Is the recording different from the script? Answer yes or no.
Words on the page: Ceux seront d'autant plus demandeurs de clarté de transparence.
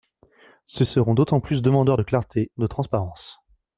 no